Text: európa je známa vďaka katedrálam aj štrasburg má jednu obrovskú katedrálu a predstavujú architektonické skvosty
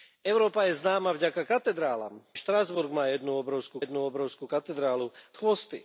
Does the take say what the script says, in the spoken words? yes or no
no